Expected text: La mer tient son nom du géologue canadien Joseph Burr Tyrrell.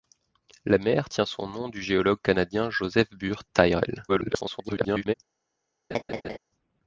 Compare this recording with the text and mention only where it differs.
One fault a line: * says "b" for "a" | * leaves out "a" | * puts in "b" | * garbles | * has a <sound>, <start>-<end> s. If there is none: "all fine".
* garbles
* has a laugh, 5.9-6.4 s